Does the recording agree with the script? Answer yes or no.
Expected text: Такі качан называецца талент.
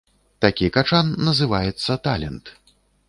yes